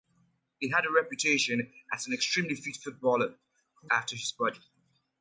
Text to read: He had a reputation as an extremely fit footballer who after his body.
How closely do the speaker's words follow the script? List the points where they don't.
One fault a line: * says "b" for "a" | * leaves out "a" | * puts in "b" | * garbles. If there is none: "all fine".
all fine